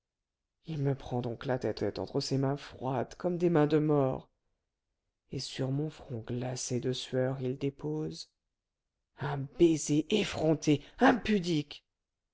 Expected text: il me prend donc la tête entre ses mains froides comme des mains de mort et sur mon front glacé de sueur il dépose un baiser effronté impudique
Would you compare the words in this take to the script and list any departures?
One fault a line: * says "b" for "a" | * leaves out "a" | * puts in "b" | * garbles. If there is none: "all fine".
* puts in "tête"